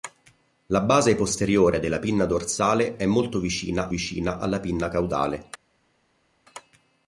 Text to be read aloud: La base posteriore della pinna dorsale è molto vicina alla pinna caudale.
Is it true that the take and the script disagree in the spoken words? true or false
true